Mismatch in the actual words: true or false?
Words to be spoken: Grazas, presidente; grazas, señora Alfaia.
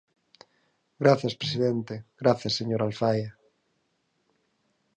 false